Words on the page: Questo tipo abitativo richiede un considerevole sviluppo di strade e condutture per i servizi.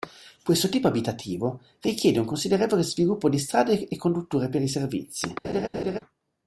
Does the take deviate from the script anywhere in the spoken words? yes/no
no